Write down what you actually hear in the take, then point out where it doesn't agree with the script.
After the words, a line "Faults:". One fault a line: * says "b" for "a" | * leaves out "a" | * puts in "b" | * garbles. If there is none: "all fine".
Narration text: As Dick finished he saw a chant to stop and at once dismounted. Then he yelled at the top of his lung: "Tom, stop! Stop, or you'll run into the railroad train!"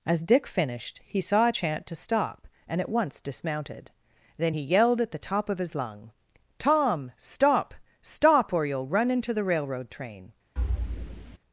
As Dick finished he saw a chant to stop and at once dismounted. Then he yelled at the top of his lung: "Tom, stop! Stop, or you'll run into the railroad train!"
Faults:
all fine